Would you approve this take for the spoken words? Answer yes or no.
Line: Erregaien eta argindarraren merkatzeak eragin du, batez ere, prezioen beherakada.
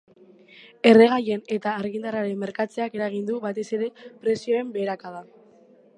yes